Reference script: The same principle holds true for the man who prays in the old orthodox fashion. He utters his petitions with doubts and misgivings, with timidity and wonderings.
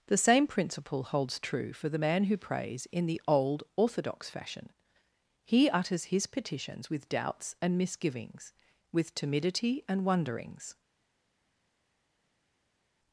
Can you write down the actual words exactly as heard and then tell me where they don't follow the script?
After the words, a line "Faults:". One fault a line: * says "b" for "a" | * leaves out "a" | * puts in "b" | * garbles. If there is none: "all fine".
The same principle holds true for the man who prays in the old orthodox fashion. He utters his petitions with doubts and misgivings, with timidity and wonderings.
Faults:
all fine